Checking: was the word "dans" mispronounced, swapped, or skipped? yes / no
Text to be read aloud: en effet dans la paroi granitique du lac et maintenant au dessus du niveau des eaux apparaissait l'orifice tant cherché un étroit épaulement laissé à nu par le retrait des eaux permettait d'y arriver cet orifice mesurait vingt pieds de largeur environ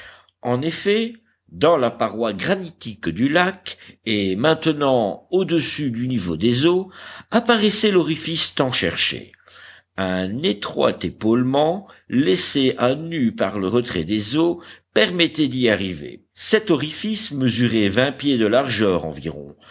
no